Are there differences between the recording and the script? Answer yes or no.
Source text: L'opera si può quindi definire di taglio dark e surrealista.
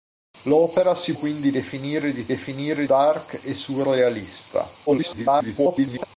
yes